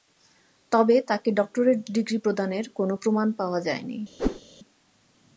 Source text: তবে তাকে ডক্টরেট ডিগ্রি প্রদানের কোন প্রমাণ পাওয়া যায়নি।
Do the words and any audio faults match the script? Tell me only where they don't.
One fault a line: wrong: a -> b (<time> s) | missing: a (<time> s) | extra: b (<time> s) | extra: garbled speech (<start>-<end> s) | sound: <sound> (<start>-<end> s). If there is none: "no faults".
sound: whoosh (4.2-4.4 s)